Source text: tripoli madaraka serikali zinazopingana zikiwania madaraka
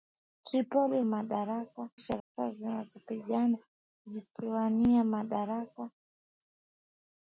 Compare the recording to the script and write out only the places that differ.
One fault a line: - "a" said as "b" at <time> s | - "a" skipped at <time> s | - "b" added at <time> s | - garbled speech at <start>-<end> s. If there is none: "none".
none